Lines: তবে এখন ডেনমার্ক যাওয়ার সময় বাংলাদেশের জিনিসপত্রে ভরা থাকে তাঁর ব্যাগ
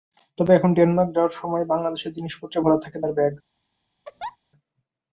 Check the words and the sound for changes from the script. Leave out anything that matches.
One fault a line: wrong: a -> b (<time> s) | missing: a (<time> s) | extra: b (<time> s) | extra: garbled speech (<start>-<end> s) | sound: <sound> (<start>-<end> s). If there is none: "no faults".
sound: laugh (4.0-4.4 s)